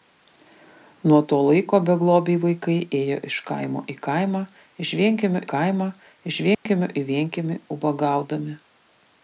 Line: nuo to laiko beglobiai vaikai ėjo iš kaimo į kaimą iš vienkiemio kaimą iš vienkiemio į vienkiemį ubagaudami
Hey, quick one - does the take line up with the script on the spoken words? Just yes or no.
yes